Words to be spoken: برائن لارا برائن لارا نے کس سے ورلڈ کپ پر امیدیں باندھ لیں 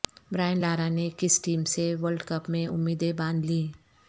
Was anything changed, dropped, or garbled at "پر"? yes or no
yes